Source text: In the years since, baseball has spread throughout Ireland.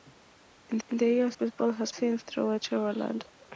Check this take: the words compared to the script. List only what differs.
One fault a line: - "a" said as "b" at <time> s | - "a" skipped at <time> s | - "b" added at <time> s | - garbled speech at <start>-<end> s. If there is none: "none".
- "in" added at 0.9 s
- "since" skipped at 1.4 s
- "spread" said as "since" at 1.9 s